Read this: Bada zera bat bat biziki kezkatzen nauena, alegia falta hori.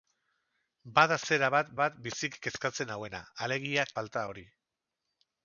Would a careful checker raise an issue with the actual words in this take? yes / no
no